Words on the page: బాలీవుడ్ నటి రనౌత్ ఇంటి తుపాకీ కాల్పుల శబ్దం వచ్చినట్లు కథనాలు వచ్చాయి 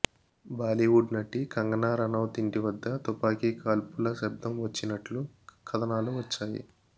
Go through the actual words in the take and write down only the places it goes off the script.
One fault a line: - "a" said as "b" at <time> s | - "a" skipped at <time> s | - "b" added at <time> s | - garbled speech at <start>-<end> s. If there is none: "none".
- "కంగనా" added at 1.5 s
- "వద్ద" added at 2.6 s